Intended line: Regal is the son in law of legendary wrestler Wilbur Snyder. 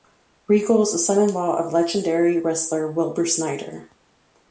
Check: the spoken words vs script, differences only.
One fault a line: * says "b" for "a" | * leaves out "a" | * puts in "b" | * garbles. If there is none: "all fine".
all fine